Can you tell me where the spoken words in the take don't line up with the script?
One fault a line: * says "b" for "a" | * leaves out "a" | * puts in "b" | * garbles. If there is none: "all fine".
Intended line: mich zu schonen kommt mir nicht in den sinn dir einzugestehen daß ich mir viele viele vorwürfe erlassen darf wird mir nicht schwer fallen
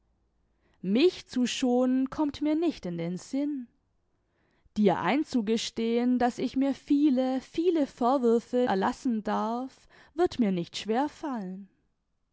all fine